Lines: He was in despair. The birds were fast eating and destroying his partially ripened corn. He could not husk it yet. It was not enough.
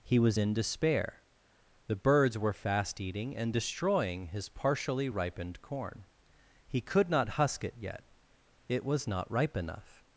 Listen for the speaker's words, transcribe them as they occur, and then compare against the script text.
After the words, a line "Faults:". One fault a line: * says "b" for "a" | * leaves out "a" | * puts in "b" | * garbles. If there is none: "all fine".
He was in despair. The birds were fast eating and destroying his partially ripened corn. He could not husk it yet. It was not ripe enough.
Faults:
* puts in "ripe"